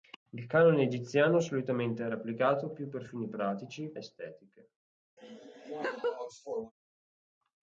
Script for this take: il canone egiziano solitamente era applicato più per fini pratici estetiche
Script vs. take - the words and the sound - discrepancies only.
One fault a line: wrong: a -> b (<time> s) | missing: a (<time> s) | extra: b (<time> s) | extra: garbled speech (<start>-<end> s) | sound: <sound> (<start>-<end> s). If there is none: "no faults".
sound: laugh (5.2-6.7 s)